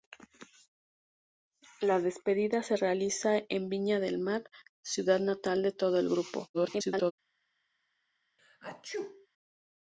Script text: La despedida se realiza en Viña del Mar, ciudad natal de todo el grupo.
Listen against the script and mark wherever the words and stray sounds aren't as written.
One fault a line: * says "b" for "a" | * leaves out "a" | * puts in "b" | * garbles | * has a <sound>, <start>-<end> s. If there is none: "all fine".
* garbles
* has a sneeze, 8.4-9.3 s